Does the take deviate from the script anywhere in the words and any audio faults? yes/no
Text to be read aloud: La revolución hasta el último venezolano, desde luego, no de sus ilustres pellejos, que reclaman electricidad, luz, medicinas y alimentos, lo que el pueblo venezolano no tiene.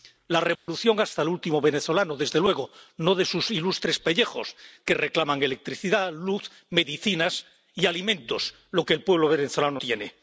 yes